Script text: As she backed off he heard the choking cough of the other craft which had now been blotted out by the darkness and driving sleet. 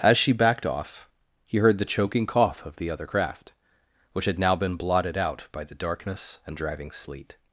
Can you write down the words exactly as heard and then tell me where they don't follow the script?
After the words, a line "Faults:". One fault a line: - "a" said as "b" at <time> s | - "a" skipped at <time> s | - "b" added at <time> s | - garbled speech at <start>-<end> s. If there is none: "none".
As she backed off he heard the choking cough of the other craft which had now been blotted out by the darkness and driving sleet.
Faults:
none